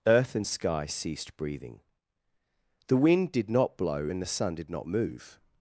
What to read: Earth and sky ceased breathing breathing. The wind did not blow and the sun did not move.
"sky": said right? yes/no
yes